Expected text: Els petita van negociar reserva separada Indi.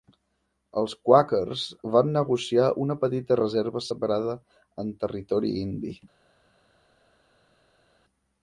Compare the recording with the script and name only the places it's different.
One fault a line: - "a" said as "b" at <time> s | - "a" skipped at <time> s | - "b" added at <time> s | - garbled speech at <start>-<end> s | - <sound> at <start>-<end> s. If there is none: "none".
- "petita" said as "quàquers" at 1.1 s
- "una petita" added at 2.9 s
- "en Territori" added at 4.8 s